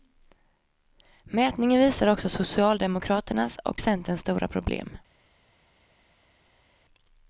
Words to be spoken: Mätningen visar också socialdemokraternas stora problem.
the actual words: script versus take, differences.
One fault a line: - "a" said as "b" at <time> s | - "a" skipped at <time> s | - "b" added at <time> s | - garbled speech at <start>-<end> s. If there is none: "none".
- "och centerns" added at 3.6 s